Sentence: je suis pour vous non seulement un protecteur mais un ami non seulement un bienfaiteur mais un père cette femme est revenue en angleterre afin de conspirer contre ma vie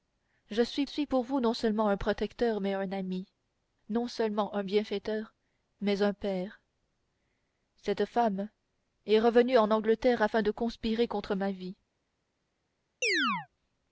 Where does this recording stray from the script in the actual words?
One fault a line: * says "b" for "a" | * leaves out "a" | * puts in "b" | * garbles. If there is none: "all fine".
* puts in "suis"